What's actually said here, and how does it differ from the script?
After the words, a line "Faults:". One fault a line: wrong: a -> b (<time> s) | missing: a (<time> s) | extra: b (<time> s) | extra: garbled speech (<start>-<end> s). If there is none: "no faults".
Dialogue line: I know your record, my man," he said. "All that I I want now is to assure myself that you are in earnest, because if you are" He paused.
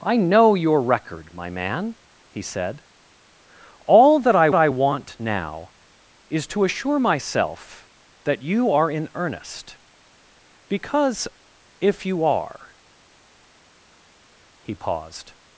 I know your record, my man," he said. "All that I I want now is to assure myself that you are in earnest, because if you are" He paused.
Faults:
no faults